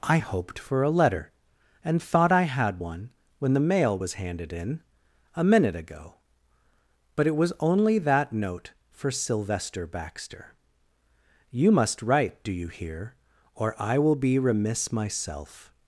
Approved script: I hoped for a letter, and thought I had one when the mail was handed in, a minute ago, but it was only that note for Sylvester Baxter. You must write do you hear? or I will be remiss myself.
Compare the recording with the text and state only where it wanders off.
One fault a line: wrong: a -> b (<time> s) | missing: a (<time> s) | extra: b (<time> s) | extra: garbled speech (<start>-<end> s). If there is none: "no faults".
no faults